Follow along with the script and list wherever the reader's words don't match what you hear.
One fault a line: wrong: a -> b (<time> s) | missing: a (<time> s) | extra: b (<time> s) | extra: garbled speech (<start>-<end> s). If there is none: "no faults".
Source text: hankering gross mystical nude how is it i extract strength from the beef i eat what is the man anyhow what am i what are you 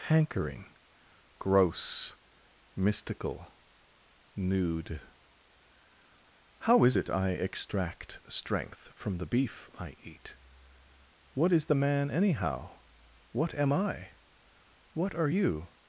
no faults